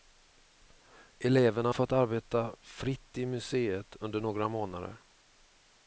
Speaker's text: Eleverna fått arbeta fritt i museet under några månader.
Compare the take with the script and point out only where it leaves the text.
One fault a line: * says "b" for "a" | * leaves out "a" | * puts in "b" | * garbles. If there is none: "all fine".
all fine